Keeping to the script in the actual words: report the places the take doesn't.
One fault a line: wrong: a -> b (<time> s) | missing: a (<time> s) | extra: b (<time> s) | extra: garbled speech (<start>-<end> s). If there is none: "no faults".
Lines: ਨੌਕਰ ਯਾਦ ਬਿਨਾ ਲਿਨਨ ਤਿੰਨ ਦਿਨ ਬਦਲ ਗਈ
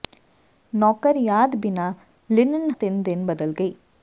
no faults